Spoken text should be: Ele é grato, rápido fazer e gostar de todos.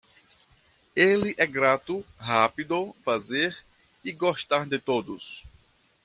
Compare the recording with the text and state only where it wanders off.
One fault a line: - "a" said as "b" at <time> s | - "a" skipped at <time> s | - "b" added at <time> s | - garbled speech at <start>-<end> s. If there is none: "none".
none